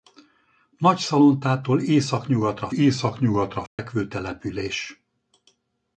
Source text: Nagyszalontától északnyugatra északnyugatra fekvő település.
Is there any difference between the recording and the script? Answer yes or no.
no